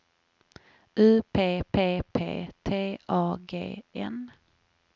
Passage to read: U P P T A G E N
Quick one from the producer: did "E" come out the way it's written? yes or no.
no